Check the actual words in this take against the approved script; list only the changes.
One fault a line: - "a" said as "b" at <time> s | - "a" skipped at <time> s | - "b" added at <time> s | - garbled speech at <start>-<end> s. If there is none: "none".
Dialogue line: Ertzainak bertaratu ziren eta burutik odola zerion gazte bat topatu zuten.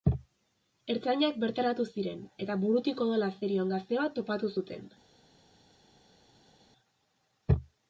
none